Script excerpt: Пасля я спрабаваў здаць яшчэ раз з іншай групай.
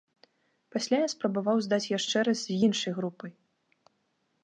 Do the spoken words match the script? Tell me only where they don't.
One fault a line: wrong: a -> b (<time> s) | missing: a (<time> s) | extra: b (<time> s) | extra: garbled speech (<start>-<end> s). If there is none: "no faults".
no faults